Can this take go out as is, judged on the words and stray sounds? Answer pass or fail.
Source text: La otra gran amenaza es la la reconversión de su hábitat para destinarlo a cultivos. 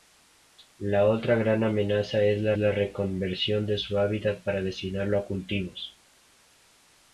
pass